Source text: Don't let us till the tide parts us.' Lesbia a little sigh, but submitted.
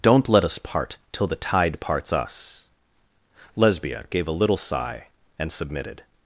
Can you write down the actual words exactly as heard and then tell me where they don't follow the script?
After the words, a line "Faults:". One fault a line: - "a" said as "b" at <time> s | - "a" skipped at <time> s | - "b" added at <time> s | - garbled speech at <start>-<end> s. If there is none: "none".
Don't let us part till the tide parts us.' Lesbia gave a little sigh, and submitted.
Faults:
- "part" added at 0.6 s
- "gave" added at 4.1 s
- "but" said as "and" at 5.4 s